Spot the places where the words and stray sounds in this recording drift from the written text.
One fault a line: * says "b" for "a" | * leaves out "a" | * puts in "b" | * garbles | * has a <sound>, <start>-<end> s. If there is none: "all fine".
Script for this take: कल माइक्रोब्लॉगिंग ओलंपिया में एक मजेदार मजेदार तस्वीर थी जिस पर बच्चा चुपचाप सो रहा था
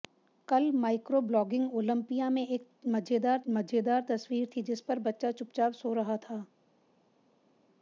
all fine